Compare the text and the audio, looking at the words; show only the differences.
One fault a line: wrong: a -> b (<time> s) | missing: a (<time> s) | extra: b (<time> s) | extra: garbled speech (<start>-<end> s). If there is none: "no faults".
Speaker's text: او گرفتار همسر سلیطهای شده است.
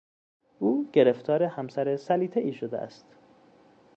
no faults